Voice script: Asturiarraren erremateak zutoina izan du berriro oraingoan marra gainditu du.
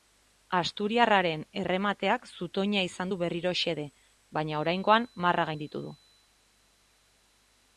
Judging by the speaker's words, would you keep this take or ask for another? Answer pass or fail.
fail